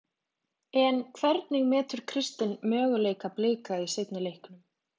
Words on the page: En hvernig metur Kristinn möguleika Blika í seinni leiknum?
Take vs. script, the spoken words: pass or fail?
pass